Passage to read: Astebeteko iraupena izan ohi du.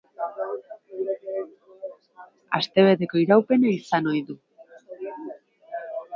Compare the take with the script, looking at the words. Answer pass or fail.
pass